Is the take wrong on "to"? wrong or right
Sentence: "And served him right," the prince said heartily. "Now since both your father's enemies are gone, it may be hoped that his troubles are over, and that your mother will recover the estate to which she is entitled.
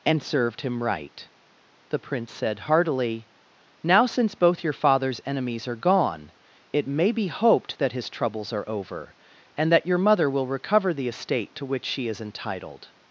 right